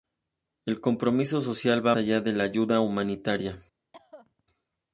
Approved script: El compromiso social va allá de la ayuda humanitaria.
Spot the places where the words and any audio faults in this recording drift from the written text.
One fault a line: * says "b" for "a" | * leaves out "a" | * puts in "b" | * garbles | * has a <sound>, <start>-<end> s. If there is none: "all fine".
* has a cough, 3.9-4.4 s